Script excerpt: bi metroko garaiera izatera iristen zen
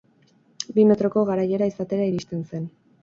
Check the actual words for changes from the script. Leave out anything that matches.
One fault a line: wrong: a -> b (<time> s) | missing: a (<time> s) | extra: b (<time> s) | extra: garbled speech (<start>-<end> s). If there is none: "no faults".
no faults